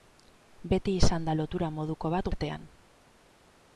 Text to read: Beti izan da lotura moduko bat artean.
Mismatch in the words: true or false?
false